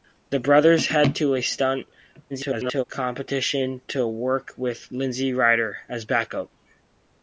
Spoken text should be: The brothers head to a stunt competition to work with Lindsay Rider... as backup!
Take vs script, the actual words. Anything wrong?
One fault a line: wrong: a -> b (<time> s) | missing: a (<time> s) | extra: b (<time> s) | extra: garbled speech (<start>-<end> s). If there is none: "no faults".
extra: garbled speech (2.3-2.8 s)